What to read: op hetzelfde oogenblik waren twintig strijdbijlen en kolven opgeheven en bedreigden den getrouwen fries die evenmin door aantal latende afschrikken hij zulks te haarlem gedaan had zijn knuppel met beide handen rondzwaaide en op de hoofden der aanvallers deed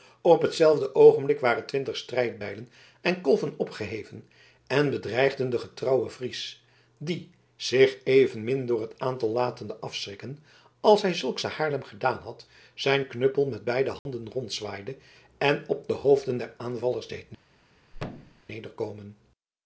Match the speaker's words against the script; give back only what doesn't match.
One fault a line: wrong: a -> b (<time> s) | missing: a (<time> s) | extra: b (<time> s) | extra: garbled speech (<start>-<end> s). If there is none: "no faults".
extra: zich (7.5 s)
extra: het (8.8 s)
extra: als (10.8 s)